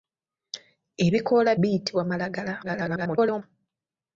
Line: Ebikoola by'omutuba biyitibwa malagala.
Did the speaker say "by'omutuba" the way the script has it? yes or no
no